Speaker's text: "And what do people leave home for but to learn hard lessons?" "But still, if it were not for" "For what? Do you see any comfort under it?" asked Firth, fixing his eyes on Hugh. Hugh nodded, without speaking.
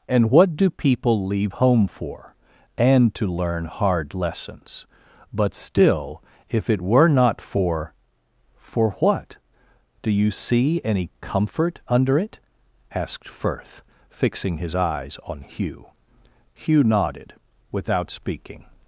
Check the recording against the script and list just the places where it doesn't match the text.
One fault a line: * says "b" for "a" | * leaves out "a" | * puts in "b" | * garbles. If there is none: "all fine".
* says "and" for "but"